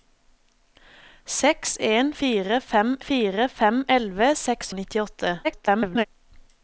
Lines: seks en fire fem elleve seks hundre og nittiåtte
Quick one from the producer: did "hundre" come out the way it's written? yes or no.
no